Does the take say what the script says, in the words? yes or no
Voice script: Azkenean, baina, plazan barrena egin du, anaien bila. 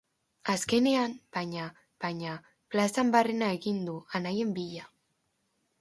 no